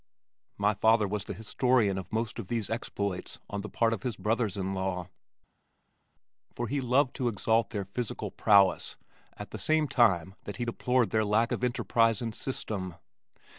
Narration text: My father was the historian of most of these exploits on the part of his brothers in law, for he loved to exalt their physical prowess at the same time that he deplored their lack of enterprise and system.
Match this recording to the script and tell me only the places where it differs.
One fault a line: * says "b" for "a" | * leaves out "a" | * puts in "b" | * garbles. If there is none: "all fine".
all fine